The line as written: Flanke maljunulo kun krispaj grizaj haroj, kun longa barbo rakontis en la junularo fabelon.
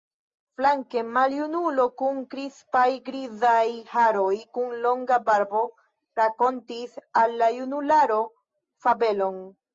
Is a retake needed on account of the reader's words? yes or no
yes